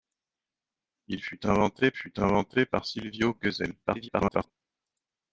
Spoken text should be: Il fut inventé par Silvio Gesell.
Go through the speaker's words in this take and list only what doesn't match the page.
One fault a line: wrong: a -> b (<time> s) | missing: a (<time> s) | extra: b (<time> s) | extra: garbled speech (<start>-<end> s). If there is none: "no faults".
extra: fut inventé (1.9 s)
extra: garbled speech (3.8-4.5 s)